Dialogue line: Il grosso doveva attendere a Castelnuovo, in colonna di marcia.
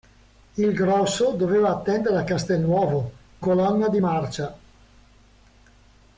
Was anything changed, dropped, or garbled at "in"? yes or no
yes